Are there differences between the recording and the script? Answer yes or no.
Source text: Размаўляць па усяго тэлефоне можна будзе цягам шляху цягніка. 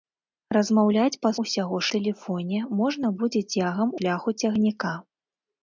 no